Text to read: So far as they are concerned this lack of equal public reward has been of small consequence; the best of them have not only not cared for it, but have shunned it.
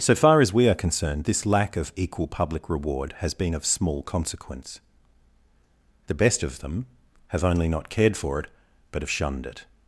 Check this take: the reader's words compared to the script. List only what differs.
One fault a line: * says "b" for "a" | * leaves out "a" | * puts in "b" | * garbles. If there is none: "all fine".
* says "we" for "they"
* leaves out "not"